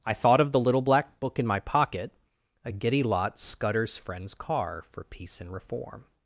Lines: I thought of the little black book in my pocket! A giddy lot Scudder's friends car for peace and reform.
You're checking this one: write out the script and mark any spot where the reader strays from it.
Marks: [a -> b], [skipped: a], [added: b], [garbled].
I thought of the little black book in my pocket! A giddy lot Scudder's friends car for peace and reform.